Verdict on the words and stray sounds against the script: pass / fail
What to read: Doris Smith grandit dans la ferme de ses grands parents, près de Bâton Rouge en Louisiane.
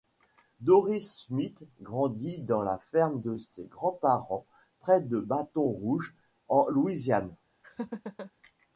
fail